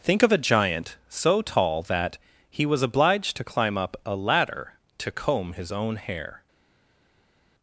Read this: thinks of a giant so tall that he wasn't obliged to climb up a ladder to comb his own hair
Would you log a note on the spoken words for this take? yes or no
yes